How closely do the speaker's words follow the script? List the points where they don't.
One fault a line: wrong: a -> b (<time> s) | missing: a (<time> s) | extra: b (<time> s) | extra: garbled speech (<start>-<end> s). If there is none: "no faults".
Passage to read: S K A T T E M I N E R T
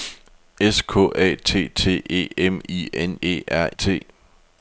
no faults